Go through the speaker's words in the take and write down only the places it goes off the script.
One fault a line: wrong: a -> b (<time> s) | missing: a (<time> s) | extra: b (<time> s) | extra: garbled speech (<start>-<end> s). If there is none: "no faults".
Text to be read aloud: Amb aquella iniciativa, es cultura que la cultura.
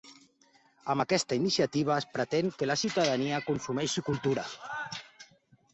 wrong: aquella -> aquesta (1.0 s)
wrong: cultura -> pretén (2.1 s)
extra: ciutadania consumeixi (2.8 s)